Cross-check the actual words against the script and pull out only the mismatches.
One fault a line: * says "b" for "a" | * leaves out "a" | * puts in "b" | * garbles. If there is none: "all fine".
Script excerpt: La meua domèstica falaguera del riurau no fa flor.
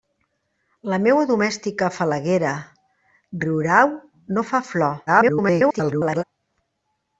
* leaves out "del"
* garbles